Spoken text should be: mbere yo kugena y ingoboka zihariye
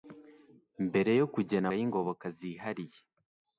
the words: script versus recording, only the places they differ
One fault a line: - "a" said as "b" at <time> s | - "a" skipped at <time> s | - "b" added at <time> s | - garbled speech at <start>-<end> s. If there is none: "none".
none